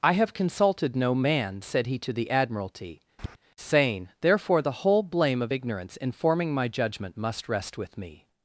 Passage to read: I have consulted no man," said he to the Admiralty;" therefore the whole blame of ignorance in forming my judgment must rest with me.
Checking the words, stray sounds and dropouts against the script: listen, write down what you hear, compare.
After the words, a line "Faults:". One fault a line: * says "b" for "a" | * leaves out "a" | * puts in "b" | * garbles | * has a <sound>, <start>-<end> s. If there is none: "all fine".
I have consulted no man," said he to the Admiralty;" saying therefore the whole blame of ignorance in forming my judgment must rest with me.
Faults:
* has a tap, 3.2-3.4 s
* puts in "saying"